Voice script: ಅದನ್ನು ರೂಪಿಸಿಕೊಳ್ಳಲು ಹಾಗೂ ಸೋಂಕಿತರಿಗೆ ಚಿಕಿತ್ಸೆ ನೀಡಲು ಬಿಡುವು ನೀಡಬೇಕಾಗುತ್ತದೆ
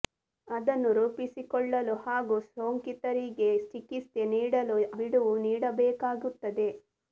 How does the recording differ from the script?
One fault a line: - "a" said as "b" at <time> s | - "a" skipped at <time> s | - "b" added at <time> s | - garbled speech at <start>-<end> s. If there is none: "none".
none